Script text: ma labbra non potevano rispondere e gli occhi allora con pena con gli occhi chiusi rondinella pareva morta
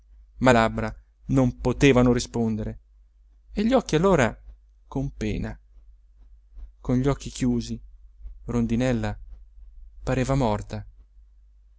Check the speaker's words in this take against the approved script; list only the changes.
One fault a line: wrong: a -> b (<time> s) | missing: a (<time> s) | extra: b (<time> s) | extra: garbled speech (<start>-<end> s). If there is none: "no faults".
no faults